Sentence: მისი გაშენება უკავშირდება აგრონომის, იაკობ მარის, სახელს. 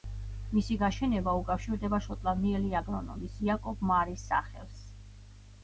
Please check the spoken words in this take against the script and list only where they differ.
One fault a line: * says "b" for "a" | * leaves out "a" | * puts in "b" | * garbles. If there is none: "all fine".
* puts in "შოტლანდიელი"